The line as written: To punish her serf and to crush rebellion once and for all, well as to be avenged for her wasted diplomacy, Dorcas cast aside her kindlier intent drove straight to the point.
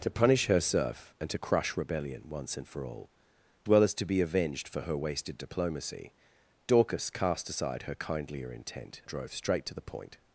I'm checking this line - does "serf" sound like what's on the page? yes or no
yes